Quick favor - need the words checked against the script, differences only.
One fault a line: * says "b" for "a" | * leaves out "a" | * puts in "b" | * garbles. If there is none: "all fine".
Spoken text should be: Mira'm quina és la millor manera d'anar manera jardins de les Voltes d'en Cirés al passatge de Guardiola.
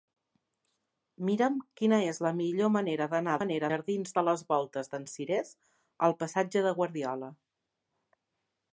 all fine